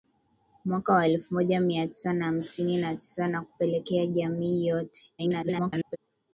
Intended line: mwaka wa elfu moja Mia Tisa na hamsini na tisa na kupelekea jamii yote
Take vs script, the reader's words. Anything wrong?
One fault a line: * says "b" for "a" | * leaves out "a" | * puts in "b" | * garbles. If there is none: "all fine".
* garbles